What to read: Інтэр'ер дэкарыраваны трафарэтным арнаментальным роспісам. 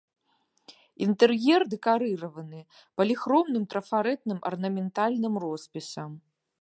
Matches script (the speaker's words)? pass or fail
fail